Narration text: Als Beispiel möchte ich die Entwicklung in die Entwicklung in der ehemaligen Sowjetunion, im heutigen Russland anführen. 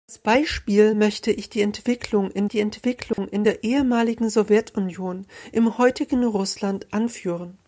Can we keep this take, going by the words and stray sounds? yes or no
no